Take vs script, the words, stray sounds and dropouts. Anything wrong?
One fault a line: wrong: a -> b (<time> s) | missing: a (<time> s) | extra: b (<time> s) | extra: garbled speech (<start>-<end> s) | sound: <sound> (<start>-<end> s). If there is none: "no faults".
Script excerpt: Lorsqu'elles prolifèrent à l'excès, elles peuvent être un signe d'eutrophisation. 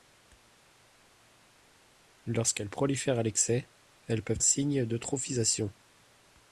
missing: être (4.4 s)